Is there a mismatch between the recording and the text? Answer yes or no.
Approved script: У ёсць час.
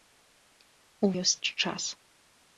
no